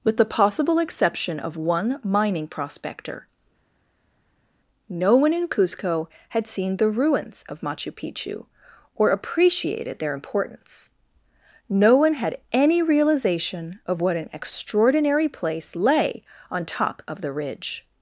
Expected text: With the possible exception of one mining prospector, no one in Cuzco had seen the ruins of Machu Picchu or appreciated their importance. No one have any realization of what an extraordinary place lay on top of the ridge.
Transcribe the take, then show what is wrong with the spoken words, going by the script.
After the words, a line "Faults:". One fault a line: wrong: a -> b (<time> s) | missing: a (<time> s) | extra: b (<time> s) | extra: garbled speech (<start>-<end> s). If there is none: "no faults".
With the possible exception of one mining prospector, no one in Cuzco had seen the ruins of Machu Picchu or appreciated their importance. No one had any realization of what an extraordinary place lay on top of the ridge.
Faults:
wrong: have -> had (12.1 s)